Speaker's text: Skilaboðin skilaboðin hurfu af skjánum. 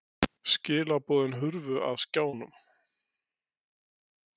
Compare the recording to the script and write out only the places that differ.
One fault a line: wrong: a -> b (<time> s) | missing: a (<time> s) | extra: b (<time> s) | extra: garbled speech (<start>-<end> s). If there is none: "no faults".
missing: skilaboðin (1.4 s)